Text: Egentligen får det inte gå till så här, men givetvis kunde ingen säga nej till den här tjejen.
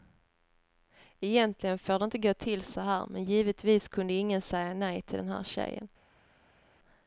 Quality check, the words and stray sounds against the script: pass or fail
pass